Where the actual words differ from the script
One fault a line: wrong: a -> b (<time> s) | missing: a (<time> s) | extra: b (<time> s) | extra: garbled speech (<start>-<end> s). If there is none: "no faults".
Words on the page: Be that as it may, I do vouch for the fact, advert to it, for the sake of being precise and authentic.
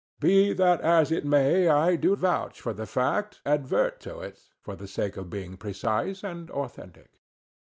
no faults